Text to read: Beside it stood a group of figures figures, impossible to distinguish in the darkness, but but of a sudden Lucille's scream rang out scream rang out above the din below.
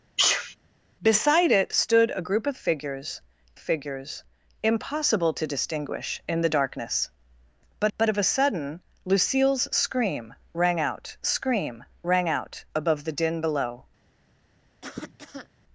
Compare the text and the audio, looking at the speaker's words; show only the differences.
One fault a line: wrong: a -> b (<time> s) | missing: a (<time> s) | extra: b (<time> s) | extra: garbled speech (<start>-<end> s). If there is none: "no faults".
no faults